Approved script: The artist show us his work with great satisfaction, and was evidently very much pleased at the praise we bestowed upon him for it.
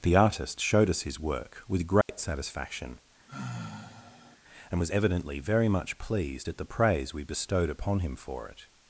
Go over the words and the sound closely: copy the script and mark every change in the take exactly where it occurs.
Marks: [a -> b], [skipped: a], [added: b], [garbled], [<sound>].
The artist [show -> showed] us his work with great [dropout] satisfaction, [sigh] and was evidently very much pleased at the praise we bestowed upon him for it.